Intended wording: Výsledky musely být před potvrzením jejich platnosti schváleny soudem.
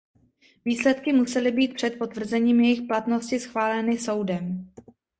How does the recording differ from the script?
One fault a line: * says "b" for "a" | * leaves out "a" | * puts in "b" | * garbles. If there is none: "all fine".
all fine